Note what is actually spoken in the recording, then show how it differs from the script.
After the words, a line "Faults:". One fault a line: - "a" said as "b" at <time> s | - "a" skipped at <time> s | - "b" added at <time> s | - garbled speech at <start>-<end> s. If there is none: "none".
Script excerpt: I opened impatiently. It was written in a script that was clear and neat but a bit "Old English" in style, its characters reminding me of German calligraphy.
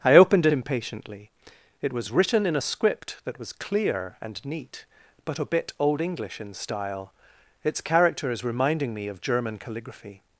I opened impatiently. It was written in a script that was clear and neat but a bit "Old English" in style, its characters reminding me of German calligraphy.
Faults:
none